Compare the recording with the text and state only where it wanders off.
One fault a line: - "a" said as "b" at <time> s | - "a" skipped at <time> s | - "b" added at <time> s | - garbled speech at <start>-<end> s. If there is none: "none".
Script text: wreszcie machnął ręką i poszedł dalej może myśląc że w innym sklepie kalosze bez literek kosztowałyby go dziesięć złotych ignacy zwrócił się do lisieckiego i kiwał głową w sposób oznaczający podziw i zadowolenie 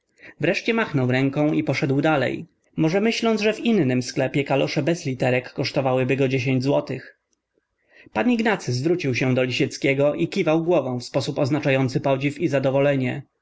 - "pan" added at 8.1 s